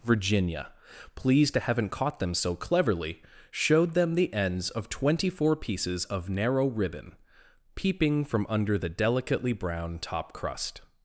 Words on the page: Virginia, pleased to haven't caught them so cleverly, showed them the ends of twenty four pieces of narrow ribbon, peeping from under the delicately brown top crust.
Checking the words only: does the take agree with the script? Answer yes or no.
yes